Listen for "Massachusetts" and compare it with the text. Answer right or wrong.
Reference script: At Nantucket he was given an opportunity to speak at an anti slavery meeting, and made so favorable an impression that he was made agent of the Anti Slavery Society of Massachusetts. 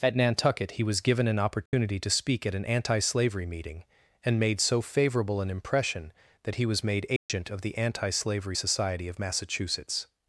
right